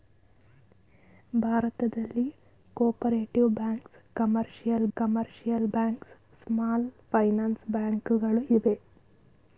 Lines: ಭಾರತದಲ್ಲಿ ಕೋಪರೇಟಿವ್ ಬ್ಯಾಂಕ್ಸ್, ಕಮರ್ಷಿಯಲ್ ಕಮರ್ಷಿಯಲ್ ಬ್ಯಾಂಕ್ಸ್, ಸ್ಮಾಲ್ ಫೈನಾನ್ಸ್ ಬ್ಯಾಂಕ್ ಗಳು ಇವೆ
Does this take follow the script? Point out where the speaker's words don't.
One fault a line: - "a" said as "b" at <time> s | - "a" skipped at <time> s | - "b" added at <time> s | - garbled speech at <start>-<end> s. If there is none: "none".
none